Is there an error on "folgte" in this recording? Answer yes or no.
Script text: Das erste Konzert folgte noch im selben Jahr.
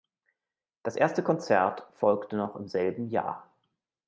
no